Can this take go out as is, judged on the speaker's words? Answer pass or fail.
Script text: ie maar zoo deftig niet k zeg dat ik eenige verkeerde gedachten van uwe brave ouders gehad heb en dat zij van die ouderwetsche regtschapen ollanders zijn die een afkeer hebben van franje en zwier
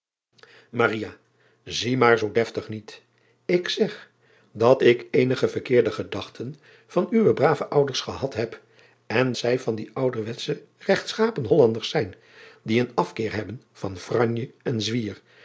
fail